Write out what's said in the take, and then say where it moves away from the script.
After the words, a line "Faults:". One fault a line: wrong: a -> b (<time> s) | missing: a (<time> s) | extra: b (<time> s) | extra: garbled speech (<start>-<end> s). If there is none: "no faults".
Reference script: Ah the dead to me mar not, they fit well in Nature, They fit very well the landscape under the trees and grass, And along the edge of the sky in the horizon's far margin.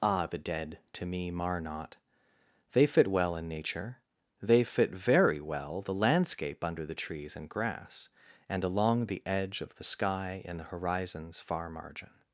Ah the dead to me mar not, they fit well in Nature, They fit very well the landscape under the trees and grass, And along the edge of the sky in the horizon's far margin.
Faults:
no faults